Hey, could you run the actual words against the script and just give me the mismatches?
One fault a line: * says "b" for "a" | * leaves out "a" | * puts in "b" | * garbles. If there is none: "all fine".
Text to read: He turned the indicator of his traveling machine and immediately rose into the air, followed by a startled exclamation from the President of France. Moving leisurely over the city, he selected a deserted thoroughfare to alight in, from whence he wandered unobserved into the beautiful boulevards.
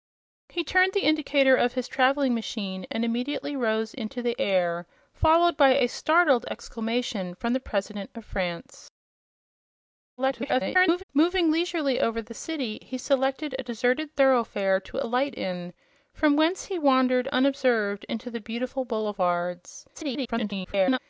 * garbles
* garbles